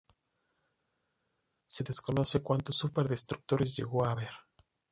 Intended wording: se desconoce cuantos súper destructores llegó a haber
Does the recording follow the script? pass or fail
pass